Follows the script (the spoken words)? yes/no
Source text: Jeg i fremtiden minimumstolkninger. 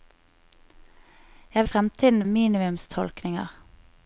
yes